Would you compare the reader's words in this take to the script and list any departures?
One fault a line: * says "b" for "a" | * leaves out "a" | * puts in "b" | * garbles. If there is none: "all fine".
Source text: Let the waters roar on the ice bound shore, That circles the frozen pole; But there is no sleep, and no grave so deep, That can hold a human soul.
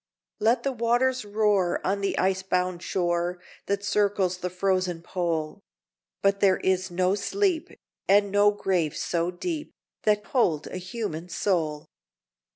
* leaves out "can"